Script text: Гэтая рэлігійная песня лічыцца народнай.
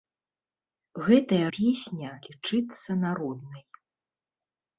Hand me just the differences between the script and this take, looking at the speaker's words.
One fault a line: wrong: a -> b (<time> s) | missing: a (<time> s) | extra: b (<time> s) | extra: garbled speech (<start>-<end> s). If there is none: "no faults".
missing: рэлігійная (1.4 s)